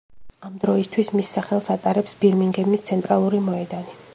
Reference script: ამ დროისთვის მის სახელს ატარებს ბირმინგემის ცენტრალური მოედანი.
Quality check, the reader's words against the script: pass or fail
pass